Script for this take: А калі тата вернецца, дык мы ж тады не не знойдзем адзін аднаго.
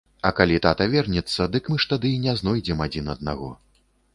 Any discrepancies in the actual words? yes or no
yes